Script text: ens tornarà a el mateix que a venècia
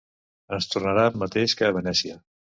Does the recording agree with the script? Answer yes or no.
yes